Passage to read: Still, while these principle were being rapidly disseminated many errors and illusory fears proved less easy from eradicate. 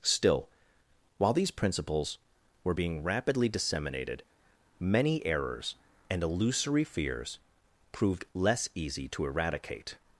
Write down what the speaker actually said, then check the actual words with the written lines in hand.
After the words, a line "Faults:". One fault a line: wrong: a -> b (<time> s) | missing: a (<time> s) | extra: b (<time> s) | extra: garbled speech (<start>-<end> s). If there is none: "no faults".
Still, while these principles were being rapidly disseminated many errors and illusory fears proved less easy to eradicate.
Faults:
wrong: principle -> principles (1.5 s)
wrong: from -> to (9.1 s)